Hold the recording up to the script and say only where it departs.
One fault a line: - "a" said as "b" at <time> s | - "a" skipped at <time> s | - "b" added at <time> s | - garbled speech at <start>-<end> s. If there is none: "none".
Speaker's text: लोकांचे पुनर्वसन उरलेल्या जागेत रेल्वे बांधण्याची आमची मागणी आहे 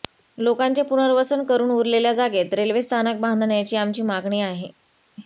- "करून" added at 1.4 s
- "स्थानक" added at 2.8 s